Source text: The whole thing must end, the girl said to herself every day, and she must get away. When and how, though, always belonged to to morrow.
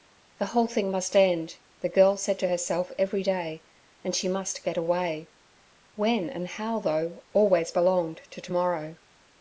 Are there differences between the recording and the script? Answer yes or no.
no